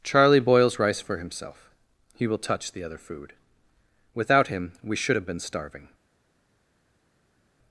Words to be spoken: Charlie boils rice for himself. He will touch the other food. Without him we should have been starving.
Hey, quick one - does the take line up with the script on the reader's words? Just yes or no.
yes